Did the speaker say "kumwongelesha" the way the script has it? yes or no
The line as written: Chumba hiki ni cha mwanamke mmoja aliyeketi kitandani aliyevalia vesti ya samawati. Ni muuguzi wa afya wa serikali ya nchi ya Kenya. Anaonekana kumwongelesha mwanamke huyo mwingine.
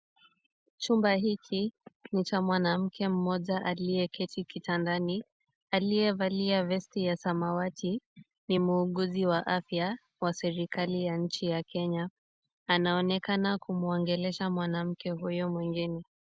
yes